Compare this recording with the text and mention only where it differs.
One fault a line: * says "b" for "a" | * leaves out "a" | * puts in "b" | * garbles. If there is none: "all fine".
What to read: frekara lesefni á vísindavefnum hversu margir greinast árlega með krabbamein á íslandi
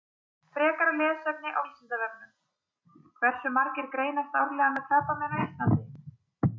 all fine